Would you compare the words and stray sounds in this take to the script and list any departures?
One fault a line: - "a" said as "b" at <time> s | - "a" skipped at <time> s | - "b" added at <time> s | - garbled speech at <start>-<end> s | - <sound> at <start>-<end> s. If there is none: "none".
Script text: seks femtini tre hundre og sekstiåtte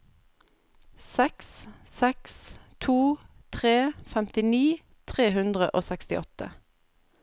- "seks to tre" added at 1.9 s